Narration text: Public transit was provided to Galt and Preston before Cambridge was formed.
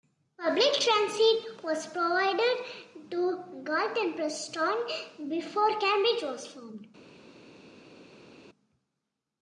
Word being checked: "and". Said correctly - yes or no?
yes